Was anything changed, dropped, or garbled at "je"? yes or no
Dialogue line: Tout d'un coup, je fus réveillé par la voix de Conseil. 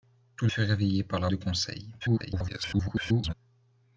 yes